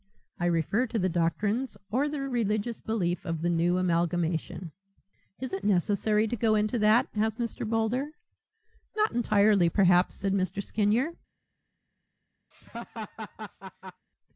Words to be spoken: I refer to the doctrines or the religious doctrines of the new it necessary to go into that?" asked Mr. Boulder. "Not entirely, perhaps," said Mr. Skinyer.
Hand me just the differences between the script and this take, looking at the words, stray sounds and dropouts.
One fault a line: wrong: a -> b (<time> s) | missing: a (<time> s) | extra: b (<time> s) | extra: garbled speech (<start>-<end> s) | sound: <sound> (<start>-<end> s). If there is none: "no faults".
wrong: doctrines -> belief (2.8 s)
extra: amalgamation Is (3.8 s)
sound: laugh (12.5-14.1 s)